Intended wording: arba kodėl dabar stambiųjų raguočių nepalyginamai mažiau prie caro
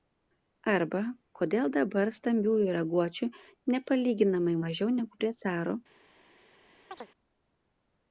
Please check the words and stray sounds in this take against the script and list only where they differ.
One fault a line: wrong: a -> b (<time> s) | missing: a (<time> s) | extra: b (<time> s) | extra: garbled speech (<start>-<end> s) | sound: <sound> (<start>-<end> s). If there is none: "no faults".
extra: negu (5.0 s)
sound: chirp (6.9-7.1 s)